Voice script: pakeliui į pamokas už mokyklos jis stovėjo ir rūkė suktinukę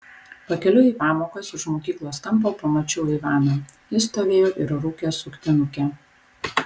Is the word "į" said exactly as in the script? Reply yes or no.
yes